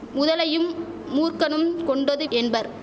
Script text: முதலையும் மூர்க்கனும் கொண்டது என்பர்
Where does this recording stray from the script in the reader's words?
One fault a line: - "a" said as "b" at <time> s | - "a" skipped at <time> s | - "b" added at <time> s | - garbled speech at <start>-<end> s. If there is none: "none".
none